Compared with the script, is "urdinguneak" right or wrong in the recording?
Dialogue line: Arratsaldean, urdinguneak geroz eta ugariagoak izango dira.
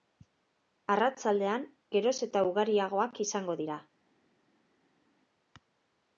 wrong